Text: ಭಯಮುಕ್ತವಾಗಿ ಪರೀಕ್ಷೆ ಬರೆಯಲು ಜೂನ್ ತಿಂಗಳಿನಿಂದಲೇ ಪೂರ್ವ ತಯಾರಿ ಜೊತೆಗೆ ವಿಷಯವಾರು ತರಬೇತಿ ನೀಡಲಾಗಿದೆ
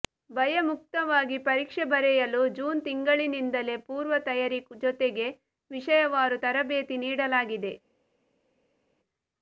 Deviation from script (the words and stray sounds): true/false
false